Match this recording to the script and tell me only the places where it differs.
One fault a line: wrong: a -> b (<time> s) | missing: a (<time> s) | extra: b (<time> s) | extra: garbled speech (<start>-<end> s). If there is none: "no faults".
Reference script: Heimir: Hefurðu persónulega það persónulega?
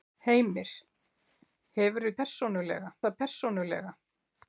no faults